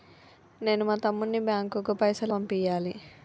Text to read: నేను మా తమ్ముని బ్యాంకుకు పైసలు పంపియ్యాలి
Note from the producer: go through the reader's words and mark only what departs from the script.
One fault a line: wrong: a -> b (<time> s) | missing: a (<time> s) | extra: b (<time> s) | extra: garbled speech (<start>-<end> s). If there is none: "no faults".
no faults